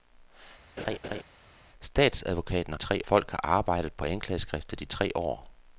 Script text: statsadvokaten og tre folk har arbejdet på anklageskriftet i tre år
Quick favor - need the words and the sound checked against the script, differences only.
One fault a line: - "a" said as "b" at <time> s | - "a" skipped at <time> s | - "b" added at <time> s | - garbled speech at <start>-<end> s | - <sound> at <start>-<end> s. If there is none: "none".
- laugh at 0.8-1.2 s